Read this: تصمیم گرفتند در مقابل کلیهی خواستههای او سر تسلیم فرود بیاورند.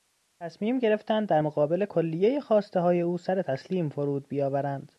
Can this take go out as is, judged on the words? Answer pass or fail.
pass